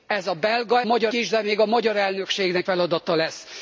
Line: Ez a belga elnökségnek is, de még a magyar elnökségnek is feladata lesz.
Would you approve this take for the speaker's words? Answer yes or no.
no